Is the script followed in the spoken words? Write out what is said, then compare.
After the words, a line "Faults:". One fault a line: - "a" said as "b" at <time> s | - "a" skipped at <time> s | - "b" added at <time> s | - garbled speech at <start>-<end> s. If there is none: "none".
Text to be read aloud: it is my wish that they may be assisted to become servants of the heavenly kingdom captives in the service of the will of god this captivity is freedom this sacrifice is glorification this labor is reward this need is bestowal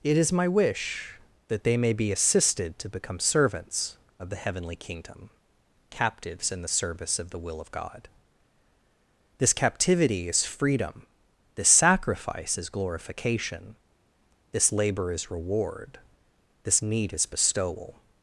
it is my wish that they may be assisted to become servants of the heavenly kingdom captives in the service of the will of god this captivity is freedom this sacrifice is glorification this labor is reward this need is bestowal
Faults:
none